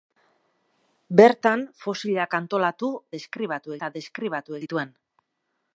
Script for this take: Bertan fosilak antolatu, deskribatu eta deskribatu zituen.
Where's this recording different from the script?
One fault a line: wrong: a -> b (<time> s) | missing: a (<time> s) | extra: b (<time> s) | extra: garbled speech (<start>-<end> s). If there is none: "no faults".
no faults